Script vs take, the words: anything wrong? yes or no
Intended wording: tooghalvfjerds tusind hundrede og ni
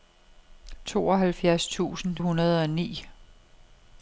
no